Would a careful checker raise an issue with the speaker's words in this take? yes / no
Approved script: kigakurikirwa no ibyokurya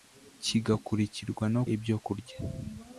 no